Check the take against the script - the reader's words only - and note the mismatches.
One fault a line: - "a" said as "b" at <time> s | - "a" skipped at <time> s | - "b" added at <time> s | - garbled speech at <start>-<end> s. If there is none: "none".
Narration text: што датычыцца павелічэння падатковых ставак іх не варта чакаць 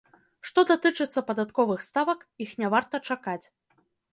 - "павелічэння" skipped at 1.2 s